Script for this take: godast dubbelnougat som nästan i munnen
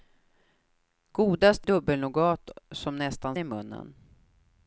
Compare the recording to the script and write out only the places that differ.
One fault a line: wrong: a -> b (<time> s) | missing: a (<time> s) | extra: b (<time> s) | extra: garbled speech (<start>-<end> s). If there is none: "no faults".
no faults